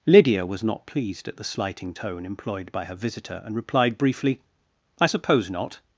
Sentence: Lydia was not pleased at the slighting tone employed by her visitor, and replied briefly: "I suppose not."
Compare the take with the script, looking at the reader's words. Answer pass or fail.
pass